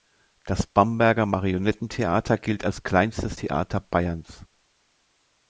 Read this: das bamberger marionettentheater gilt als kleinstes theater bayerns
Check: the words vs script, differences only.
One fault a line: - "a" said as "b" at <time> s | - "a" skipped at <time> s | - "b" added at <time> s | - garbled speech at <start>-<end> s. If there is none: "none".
none